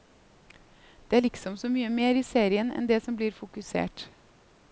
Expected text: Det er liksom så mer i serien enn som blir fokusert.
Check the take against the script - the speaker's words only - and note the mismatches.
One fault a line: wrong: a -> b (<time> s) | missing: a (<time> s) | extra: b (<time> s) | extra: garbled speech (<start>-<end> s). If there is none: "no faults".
extra: mye (1.7 s)
extra: det (2.9 s)